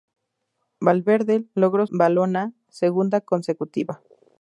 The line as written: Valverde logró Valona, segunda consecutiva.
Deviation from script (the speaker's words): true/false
false